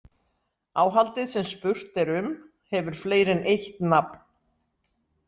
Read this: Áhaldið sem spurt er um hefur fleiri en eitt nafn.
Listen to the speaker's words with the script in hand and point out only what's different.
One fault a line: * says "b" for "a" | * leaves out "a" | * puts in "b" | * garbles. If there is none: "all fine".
all fine